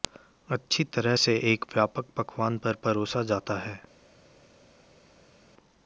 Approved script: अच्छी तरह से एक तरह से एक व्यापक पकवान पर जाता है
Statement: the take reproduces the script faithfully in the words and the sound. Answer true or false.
false